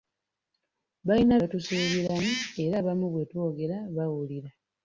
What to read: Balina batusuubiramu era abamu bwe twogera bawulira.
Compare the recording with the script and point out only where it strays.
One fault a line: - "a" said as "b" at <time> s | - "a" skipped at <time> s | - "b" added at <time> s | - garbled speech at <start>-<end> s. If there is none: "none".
none